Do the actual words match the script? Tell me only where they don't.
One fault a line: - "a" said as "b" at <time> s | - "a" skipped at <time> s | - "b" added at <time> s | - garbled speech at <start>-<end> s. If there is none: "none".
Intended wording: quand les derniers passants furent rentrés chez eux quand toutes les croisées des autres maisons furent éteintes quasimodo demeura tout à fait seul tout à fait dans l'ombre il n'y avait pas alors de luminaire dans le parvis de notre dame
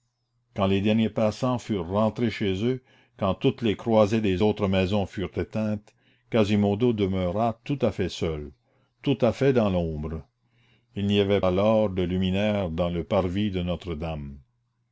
- "pas" skipped at 11.4 s